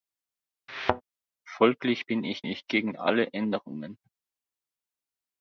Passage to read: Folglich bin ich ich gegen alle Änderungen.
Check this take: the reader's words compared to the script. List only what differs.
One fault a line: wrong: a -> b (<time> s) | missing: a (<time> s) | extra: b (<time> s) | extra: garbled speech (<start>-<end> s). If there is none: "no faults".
no faults